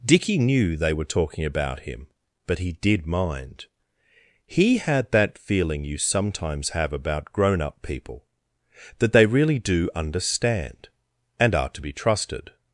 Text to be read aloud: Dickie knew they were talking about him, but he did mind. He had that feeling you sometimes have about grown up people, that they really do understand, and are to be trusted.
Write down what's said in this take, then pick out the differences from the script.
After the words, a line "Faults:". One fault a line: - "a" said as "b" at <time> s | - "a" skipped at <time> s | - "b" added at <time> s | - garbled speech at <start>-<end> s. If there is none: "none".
Dickie knew they were talking about him, but he did mind. He had that feeling you sometimes have about grown up people, that they really do understand, and are to be trusted.
Faults:
none